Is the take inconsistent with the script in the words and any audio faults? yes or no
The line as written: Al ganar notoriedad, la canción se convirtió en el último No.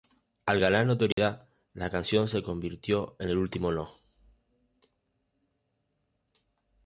yes